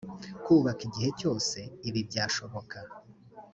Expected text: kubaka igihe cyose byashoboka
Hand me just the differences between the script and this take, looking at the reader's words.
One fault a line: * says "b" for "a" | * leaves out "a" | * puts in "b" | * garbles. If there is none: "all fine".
* puts in "ibi"